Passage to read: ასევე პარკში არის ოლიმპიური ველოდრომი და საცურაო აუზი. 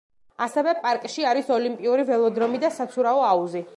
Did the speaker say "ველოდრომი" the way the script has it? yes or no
yes